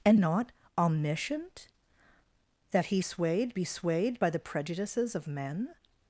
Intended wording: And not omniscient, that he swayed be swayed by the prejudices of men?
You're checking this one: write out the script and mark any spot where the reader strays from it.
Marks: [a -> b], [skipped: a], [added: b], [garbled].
And not omniscient, that he swayed be swayed by the prejudices of men?